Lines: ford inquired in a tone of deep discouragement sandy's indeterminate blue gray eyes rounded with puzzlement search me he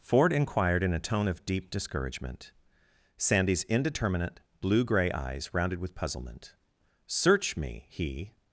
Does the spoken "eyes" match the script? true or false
true